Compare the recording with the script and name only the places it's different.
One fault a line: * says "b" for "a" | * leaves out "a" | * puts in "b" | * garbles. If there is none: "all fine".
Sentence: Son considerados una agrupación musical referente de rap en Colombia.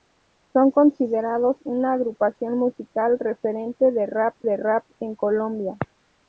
* puts in "de rap"